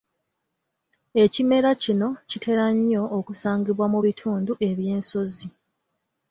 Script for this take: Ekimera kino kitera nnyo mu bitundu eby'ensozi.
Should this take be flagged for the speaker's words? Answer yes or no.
yes